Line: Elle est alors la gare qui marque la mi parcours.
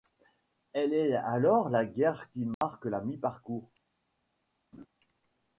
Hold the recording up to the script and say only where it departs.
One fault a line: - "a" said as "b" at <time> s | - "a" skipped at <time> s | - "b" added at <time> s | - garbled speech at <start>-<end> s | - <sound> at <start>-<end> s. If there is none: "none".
- dropout at 2.5-2.6 s
- laugh at 4.7-4.9 s